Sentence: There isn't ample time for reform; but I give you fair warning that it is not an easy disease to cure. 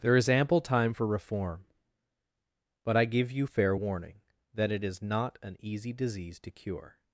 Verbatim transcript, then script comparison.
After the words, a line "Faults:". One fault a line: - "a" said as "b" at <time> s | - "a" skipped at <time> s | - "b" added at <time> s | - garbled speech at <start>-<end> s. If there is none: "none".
There is ample time for reform; but I give you fair warning that it is not an easy disease to cure.
Faults:
- "isn't" said as "is" at 0.1 s